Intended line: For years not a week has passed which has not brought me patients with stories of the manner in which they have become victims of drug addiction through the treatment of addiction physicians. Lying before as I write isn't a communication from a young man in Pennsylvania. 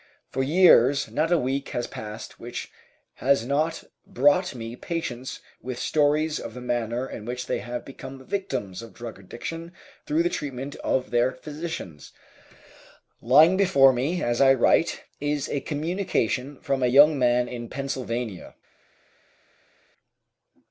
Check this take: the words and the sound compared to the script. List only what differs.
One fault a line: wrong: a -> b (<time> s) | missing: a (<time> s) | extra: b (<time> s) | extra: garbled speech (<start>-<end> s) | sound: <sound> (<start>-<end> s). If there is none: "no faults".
wrong: addiction -> their (11.1 s)
extra: me (13.9 s)
wrong: isn't -> is (15.2 s)